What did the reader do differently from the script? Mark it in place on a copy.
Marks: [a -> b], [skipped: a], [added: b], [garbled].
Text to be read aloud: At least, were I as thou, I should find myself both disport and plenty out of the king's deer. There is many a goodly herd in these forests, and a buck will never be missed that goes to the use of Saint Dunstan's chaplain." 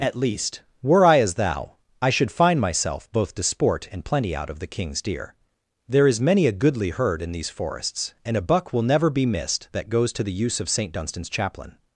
At least, were I as thou, I should find myself both disport and plenty out of the king's deer. There is many a goodly herd in these forests, and a buck will never be missed that goes to the use of Saint Dunstan's chaplain."